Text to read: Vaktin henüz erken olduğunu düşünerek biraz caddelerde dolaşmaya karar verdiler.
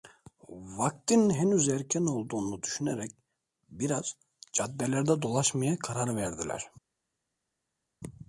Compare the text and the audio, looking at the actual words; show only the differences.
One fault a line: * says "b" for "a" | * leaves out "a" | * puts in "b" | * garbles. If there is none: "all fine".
all fine